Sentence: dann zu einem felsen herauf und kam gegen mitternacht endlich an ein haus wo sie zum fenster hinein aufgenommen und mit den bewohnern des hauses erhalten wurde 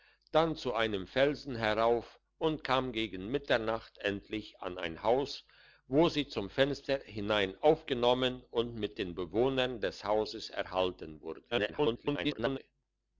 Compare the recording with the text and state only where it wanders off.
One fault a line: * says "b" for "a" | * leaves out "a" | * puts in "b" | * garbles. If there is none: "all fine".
* garbles